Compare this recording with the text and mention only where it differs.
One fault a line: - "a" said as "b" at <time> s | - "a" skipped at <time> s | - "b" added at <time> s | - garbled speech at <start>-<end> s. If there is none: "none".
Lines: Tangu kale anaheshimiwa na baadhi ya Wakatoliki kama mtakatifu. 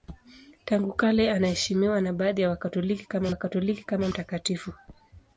- "Wakatoliki kama" added at 3.3 s